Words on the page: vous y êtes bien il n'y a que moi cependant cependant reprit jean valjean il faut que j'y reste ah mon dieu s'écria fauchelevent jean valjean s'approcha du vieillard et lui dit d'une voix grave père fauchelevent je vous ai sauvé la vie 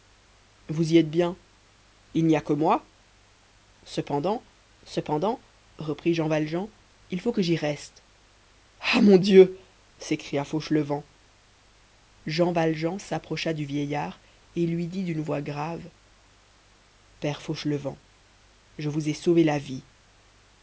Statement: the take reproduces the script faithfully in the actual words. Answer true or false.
true